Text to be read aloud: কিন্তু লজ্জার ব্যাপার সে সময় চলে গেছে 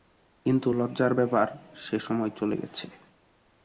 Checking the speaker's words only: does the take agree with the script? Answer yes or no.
yes